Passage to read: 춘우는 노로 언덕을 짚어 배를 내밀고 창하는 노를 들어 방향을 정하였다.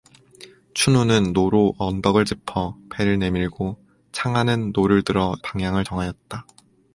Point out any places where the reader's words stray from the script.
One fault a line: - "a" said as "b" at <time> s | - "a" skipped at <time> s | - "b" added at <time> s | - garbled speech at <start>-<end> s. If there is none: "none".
none